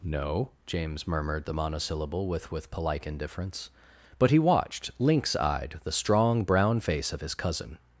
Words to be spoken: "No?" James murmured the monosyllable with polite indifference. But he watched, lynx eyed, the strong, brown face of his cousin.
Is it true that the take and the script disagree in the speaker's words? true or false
true